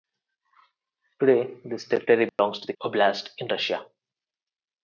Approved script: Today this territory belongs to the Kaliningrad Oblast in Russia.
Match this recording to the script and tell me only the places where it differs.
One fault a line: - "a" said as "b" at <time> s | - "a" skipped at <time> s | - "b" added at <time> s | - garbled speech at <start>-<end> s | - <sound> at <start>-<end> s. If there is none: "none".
- dropout at 2.3-2.4 s
- "Kaliningrad" skipped at 2.7 s